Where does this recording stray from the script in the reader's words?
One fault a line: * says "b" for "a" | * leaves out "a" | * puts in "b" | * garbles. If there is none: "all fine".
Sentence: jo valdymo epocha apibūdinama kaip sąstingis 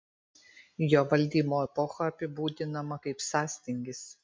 all fine